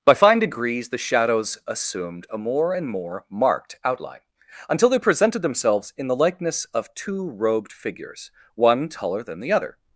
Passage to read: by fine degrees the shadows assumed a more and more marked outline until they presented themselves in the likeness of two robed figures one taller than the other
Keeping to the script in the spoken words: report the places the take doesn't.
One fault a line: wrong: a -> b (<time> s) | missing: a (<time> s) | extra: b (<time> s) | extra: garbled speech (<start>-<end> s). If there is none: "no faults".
no faults